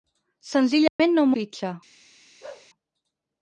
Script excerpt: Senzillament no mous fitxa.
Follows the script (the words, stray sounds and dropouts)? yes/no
no